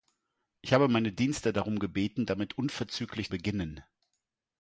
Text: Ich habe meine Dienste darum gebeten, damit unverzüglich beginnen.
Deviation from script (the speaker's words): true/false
false